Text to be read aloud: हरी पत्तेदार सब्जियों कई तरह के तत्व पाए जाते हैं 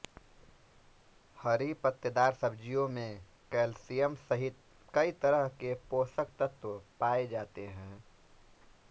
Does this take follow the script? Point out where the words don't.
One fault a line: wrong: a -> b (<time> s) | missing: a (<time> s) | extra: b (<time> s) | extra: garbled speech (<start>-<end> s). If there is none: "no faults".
extra: में कैल्शियम सहित (2.9 s)
extra: पोषक (5.9 s)